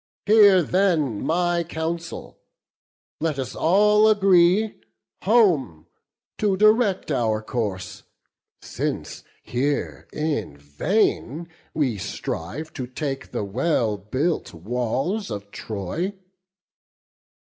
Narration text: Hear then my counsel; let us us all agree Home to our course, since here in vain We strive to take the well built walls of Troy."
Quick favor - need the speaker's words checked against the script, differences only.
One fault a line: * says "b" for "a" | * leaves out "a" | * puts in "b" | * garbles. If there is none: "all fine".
* leaves out "us"
* puts in "direct"